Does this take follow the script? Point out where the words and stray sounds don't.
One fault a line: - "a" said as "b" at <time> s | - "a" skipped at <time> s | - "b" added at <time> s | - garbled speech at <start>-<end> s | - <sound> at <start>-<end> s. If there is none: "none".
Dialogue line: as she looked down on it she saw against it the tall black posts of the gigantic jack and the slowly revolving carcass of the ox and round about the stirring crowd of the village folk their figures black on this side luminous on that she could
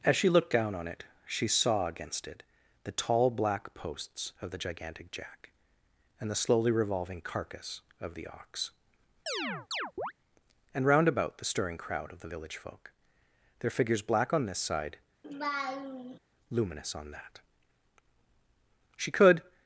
- chirp at 9.3-10.1 s
- laugh at 15.2-16.2 s